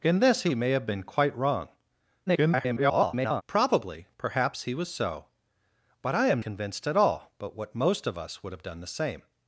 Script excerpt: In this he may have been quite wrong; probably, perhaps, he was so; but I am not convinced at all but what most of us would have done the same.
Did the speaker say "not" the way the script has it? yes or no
no